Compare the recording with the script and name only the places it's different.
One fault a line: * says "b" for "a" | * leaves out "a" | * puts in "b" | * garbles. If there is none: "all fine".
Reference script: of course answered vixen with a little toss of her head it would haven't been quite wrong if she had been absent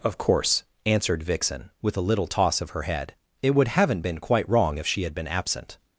all fine